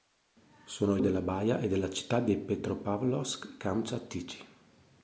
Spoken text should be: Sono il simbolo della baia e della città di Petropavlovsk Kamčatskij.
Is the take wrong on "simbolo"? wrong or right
wrong